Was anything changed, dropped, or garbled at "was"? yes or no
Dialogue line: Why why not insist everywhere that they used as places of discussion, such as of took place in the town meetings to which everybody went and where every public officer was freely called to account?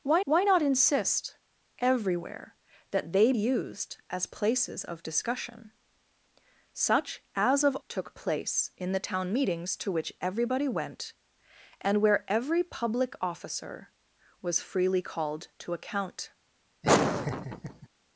no